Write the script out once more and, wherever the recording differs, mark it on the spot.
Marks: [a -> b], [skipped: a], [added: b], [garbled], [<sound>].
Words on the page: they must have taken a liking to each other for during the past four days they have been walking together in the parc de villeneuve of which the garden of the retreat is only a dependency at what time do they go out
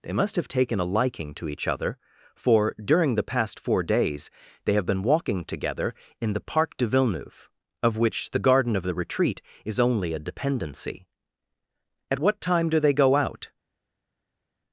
they must have taken a liking to each other for during the past four days they have been walking together in the parc de villeneuve of which the garden of the retreat is only a dependency at what time do they go out